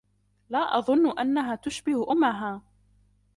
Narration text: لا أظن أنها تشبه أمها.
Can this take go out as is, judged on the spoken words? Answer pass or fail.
pass